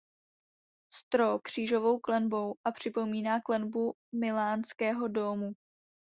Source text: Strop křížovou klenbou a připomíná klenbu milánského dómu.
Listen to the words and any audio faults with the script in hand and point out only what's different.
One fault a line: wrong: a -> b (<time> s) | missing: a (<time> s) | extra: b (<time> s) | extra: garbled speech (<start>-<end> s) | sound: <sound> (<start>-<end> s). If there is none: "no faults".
no faults